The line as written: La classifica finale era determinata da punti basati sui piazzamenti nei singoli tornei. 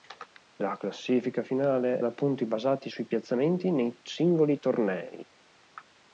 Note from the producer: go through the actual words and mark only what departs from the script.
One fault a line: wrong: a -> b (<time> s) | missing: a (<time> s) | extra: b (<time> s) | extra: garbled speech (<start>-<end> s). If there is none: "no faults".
missing: era determinata (2.0 s)